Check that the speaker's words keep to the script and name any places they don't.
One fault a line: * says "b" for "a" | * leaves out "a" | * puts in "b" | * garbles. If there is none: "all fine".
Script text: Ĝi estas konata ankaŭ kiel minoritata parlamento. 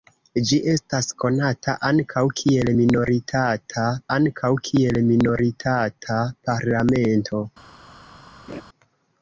* puts in "ankaŭ kiel minoritata"